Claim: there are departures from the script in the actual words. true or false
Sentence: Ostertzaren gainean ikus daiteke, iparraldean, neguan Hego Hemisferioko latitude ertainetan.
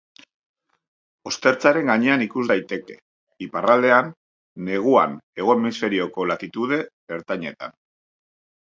false